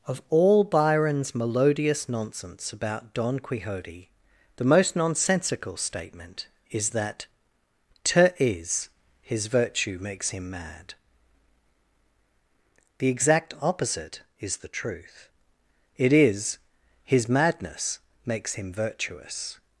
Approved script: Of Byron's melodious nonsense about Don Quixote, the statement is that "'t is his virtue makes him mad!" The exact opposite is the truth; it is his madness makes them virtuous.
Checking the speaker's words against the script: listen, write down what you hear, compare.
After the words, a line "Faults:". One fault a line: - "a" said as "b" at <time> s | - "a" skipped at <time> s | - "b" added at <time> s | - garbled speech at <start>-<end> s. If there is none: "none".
Of all Byron's melodious nonsense about Don Quixote, the most nonsensical statement is that "'t is his virtue makes him mad!" The exact opposite is the truth; it is his madness makes him virtuous.
Faults:
- "all" added at 0.3 s
- "most nonsensical" added at 4.7 s
- "them" said as "him" at 18.6 s